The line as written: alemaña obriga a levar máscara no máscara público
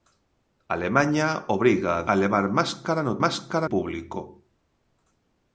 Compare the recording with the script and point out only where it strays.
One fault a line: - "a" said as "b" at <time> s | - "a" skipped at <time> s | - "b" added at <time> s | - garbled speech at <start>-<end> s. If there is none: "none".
none